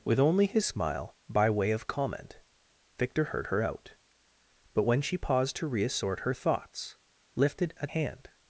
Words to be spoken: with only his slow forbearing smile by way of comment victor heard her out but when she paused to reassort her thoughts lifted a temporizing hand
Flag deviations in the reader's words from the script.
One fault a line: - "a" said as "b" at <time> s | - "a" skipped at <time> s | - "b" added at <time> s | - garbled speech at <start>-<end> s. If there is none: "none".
- "slow forbearing" skipped at 0.7 s
- "temporizing" skipped at 7.9 s